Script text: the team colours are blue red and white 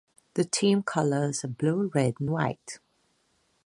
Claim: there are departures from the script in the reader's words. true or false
false